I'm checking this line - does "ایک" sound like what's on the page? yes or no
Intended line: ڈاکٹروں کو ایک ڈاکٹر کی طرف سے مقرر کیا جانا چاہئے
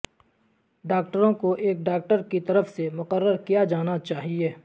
yes